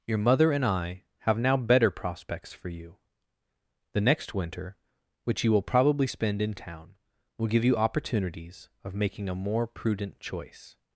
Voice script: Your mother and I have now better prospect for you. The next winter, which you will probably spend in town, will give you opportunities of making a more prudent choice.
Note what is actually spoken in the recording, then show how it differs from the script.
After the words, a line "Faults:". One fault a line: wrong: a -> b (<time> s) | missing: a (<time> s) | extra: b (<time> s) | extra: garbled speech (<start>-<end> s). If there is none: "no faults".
Your mother and I have now better prospects for you. The next winter, which you will probably spend in town, will give you opportunities of making a more prudent choice.
Faults:
wrong: prospect -> prospects (1.9 s)